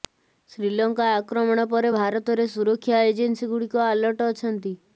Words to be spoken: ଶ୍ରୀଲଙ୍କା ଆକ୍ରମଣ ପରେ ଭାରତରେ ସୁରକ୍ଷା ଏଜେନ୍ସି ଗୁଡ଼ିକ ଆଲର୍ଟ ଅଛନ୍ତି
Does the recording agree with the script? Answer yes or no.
yes